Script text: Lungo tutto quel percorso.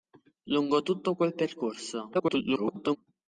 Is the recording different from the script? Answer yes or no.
yes